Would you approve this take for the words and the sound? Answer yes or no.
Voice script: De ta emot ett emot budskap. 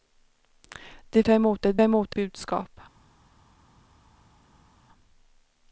yes